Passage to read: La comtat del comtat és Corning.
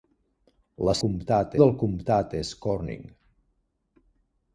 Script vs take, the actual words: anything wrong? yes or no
no